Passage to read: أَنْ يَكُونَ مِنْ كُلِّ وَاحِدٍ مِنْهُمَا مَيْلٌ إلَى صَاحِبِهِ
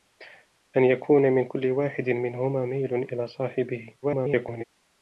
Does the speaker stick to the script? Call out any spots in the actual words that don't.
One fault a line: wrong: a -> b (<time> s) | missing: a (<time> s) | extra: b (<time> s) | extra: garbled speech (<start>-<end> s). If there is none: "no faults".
extra: garbled speech (4.0-4.6 s)